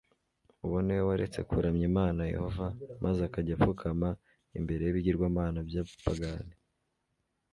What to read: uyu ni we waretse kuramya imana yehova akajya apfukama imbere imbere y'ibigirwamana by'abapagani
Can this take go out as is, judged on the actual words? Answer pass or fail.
fail